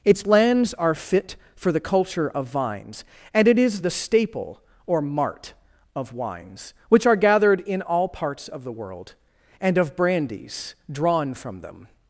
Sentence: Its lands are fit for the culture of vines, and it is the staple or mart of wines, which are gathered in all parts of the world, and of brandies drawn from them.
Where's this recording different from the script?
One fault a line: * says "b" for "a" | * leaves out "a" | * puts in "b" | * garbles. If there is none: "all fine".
all fine